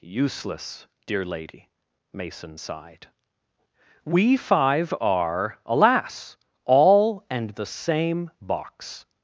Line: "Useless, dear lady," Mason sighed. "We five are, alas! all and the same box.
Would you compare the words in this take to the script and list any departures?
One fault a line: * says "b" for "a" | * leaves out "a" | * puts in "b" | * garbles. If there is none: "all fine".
all fine